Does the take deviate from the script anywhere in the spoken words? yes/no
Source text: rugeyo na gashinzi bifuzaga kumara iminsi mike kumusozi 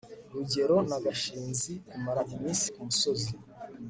yes